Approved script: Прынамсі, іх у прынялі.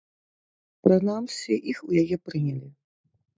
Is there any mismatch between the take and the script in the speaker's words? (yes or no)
yes